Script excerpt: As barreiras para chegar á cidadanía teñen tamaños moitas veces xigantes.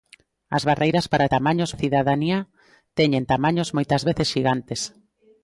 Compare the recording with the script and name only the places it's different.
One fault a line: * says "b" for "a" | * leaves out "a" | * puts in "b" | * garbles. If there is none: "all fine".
* says "tamaños" for "chegar"